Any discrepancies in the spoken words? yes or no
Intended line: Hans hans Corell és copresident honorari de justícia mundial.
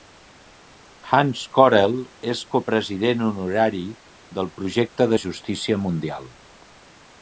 yes